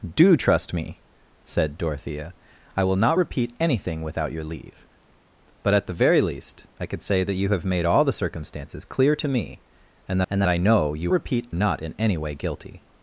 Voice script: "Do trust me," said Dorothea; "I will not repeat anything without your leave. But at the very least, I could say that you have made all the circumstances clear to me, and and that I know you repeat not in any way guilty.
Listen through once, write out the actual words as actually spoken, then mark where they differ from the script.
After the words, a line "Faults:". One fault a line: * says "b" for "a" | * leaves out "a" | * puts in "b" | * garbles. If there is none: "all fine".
"Do trust me," said Dorothea; "I will not repeat anything without your leave. But at the very least, I could say that you have made all the circumstances clear to me, and and that I know you repeat not in any way guilty.
Faults:
all fine